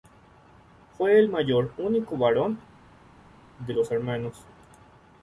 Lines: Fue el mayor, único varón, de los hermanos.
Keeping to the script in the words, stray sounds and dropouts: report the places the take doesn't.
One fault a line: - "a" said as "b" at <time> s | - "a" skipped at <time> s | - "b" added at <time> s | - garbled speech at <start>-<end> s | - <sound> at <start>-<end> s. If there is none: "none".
none